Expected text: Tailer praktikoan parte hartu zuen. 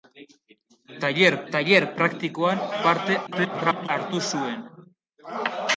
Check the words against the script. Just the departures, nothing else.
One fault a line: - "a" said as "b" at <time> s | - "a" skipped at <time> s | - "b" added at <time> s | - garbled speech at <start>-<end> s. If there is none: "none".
- "tailer" added at 1.5 s
- garbled speech at 3.3-3.9 s